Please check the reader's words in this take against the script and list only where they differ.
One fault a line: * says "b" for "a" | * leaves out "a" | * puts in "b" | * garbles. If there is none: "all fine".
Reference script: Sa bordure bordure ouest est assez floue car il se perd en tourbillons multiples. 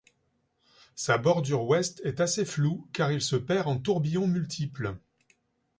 * leaves out "bordure"